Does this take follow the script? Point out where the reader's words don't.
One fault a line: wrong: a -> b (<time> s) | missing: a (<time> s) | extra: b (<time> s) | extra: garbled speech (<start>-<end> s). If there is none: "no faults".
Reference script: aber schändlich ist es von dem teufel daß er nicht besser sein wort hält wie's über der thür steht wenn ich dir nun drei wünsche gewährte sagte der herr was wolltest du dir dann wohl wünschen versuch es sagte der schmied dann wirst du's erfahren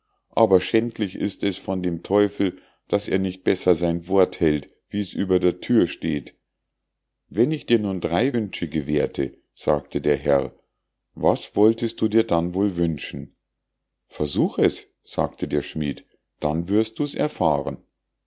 no faults